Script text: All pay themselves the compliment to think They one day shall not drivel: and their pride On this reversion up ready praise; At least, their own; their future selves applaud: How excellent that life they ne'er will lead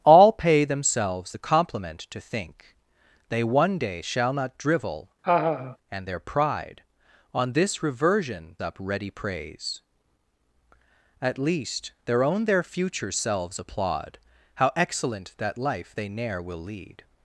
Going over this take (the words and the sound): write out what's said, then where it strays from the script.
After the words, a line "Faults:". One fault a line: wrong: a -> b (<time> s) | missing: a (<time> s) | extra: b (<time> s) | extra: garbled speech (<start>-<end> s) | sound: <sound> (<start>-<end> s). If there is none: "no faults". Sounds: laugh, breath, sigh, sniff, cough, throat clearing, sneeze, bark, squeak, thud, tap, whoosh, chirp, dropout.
All pay themselves the compliment to think They one day shall not drivel: and their pride On this reversion up ready praise; At least, their own; their future selves applaud: How excellent that life they ne'er will lead
Faults:
sound: laugh (5.2-5.8 s)